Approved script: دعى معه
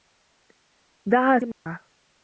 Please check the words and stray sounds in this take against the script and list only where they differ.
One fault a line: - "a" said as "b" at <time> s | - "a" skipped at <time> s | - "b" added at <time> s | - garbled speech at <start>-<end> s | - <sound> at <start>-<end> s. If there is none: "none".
- dropout at 1.5-1.7 s